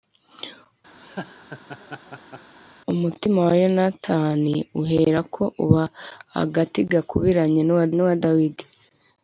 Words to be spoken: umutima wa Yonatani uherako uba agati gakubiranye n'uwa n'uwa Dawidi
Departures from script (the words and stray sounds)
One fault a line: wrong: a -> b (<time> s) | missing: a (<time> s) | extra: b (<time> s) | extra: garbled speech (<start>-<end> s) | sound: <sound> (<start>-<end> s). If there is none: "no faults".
sound: laugh (1.0-2.5 s)